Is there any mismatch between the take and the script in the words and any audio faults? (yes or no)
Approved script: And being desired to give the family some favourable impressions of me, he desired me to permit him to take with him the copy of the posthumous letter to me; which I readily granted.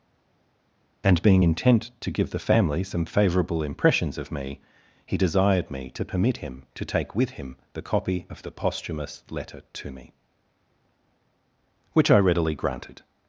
yes